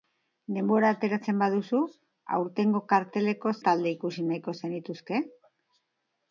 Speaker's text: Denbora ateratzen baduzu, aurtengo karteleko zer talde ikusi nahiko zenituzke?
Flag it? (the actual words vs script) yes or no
yes